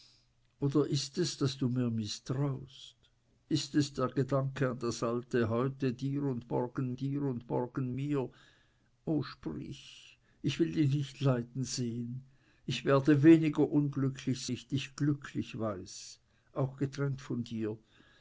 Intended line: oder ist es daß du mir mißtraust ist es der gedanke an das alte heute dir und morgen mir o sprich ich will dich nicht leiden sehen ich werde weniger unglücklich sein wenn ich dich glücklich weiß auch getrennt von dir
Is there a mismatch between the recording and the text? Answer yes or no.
yes